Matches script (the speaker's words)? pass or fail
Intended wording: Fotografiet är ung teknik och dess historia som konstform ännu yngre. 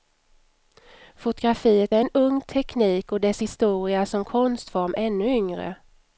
fail